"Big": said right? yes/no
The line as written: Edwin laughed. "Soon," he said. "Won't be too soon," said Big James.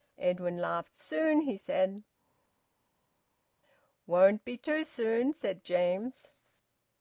no